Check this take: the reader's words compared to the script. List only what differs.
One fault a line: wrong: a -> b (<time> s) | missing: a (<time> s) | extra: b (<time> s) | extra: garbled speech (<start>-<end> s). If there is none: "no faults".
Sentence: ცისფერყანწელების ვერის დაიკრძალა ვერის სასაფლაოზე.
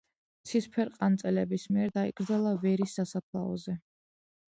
wrong: ვერის -> მიერ (1.8 s)